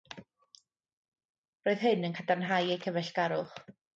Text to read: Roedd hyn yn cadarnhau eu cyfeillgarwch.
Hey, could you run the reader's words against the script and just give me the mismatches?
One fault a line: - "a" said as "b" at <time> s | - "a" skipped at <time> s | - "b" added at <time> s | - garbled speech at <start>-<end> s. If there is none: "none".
none